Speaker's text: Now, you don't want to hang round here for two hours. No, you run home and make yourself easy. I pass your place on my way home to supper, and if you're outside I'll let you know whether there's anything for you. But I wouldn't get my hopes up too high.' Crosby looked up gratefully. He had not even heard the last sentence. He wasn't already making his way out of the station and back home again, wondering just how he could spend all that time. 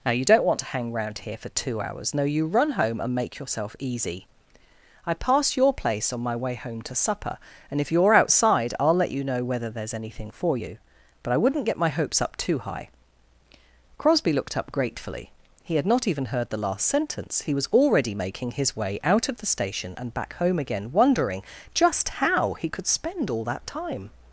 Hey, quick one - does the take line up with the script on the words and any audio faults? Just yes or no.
no